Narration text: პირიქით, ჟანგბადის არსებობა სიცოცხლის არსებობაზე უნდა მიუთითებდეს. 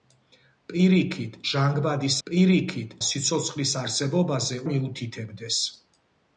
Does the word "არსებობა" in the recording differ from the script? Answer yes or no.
yes